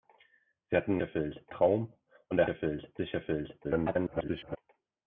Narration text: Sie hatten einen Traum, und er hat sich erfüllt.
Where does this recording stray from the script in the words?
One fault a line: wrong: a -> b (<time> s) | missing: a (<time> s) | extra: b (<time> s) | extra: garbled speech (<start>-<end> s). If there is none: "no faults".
wrong: einen -> erfüllt (1.0 s)
wrong: hat -> erfüllt (2.5 s)
extra: garbled speech (3.6-4.6 s)